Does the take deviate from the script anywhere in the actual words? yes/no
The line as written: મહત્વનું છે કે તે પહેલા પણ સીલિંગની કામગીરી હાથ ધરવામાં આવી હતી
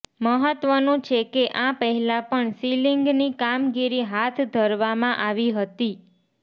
yes